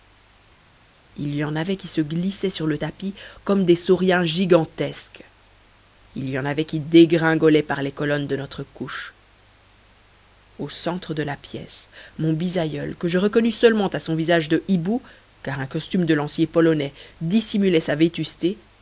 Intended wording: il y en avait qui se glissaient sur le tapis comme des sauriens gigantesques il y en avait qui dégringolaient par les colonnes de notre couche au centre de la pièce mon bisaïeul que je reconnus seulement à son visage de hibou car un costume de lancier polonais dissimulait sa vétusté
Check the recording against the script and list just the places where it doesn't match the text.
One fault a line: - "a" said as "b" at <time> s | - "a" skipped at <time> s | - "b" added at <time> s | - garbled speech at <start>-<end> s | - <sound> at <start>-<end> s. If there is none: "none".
none